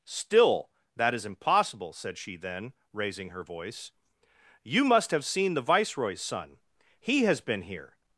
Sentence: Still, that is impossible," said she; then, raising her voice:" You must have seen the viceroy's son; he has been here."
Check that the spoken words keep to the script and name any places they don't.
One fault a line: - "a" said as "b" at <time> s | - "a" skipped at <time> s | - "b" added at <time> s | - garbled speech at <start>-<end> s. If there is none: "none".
none